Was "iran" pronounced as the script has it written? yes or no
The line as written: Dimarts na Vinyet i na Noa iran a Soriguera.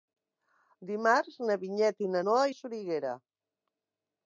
no